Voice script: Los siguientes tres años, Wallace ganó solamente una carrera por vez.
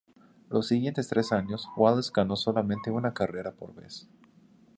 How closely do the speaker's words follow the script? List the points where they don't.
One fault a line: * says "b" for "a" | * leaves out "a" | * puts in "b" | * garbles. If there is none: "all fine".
all fine